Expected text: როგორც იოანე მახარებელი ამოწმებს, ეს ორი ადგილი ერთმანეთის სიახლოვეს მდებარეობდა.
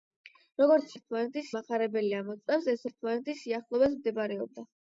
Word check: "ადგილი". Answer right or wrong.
wrong